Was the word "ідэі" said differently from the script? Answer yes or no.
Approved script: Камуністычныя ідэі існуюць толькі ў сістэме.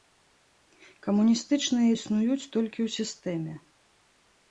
yes